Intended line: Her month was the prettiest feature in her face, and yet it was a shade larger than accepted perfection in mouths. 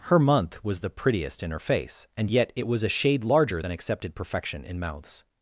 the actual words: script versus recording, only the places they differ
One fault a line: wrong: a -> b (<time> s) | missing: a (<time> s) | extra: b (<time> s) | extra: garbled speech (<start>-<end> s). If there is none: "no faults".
missing: feature (1.4 s)